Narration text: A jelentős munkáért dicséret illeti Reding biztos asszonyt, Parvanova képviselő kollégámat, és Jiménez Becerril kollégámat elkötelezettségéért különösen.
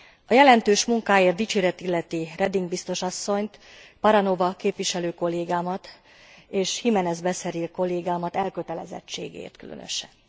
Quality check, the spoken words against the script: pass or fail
pass